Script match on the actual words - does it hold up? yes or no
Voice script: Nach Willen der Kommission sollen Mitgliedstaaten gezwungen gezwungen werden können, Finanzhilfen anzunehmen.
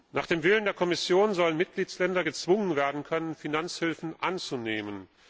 no